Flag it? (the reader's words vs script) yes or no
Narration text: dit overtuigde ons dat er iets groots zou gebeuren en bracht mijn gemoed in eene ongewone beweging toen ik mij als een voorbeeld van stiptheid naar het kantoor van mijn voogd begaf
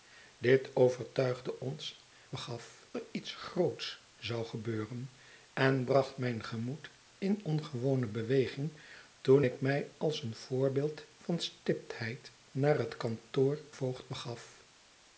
yes